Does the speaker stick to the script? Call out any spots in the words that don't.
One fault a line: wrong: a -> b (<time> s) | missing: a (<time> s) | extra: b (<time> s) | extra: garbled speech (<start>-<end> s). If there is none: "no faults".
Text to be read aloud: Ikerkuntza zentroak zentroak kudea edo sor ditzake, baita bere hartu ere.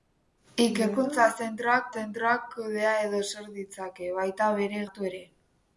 no faults